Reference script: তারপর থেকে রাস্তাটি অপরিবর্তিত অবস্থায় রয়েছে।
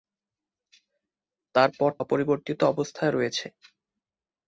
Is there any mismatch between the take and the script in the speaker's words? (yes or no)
yes